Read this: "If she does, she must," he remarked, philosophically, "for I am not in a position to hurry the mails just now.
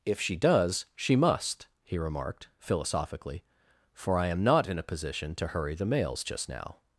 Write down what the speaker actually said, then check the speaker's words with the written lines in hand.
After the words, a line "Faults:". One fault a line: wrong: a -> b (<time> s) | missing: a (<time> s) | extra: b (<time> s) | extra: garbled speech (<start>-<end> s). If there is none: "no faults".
"If she does, she must," he remarked, philosophically, "for I am not in a position to hurry the mails just now.
Faults:
no faults